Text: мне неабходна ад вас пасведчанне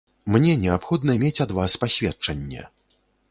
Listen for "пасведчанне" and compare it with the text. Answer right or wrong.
right